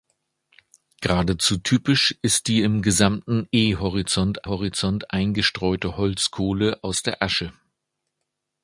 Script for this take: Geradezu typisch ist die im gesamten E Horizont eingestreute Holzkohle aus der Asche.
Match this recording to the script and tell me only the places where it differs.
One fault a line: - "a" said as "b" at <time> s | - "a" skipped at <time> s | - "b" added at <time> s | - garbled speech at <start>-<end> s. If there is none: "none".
- "Horizont" added at 4.4 s